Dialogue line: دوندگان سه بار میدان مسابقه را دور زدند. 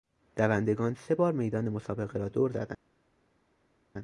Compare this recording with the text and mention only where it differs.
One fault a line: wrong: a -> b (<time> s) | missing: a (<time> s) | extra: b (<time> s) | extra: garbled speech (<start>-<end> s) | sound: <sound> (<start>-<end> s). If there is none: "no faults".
no faults